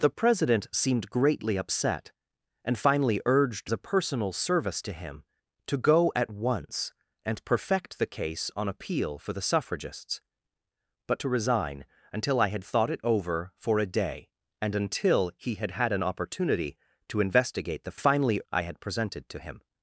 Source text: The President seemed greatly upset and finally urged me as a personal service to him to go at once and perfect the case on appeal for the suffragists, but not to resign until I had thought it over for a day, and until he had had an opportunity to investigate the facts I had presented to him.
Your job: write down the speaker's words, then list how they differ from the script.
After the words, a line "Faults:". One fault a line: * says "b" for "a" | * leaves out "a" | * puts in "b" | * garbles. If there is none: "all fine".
The President seemed greatly upset and finally urged a personal service to him to go at once and perfect the case on appeal for the suffragists, but to resign until I had thought it over for a day, and until he had had an opportunity to investigate the finally I had presented to him.
Faults:
* leaves out "me as"
* leaves out "not"
* says "finally" for "facts"